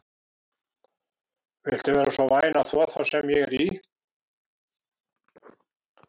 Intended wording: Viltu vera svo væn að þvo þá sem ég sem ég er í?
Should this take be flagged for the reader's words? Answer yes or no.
yes